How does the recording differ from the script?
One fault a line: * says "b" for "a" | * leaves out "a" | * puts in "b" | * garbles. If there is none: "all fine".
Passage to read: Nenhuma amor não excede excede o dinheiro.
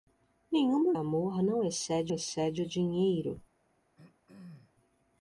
all fine